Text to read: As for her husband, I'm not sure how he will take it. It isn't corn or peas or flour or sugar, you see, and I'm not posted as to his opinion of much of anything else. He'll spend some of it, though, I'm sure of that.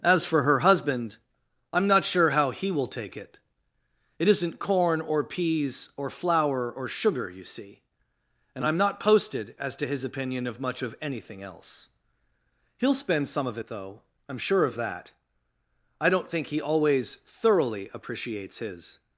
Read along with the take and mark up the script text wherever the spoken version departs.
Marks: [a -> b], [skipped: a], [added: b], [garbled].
As for her husband, I'm not sure how he will take it. It isn't corn or peas or flour or sugar, you see, and I'm not posted as to his opinion of much of anything else. He'll spend some of it, though, I'm sure of that. [added: I don't think he always thoroughly appreciates his]